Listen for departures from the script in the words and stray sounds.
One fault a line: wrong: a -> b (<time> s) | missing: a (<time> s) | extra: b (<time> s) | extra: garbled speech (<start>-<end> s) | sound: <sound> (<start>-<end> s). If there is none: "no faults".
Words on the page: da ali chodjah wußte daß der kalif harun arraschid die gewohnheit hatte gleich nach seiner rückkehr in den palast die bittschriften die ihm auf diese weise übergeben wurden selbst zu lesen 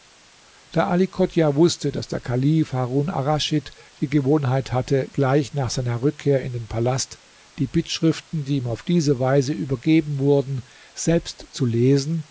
no faults